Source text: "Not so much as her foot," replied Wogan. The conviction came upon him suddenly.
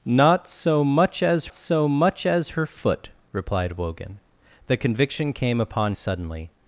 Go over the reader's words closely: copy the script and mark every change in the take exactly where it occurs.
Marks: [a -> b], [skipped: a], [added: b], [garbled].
"Not so much as [added: so much as] her foot," replied Wogan. The conviction came upon [skipped: him] suddenly.